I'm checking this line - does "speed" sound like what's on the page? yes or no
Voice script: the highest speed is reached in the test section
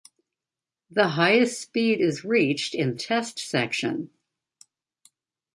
yes